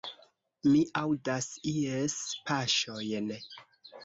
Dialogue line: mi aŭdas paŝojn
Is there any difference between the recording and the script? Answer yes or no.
yes